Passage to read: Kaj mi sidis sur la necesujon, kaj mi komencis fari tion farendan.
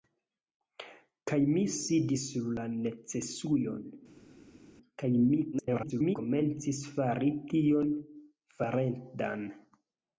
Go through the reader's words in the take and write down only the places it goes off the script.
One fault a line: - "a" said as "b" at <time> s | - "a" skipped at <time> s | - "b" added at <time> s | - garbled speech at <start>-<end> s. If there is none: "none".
- garbled speech at 5.5-6.2 s